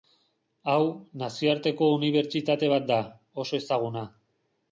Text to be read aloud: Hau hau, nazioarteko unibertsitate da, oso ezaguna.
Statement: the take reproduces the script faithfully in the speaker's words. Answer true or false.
false